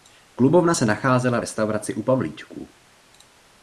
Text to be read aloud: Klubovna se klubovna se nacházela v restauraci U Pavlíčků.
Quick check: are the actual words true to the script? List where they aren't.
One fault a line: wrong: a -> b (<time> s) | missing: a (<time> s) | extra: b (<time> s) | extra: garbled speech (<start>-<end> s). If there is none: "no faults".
missing: klubovna se (0.9 s)